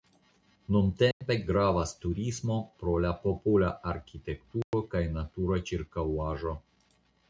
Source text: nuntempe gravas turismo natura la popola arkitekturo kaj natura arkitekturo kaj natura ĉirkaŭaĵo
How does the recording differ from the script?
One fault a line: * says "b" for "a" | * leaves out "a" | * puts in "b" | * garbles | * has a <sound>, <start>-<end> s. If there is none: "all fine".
* has a dropout, 1.1-1.2 s
* says "pro" for "natura"
* has a dropout, 4.6-4.7 s
* leaves out "arkitekturo kaj natura"